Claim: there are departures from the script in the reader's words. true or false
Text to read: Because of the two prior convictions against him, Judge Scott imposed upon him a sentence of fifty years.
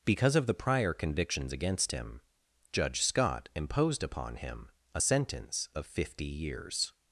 true